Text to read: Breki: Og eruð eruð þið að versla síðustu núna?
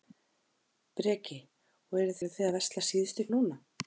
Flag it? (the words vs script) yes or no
no